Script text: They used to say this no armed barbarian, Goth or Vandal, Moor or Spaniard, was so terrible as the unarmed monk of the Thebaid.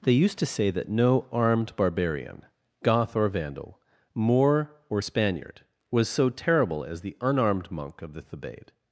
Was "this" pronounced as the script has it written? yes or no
no